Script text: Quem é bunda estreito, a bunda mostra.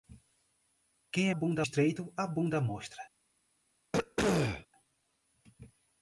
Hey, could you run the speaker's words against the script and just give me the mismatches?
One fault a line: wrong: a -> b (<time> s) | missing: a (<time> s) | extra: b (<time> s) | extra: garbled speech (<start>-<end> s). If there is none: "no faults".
no faults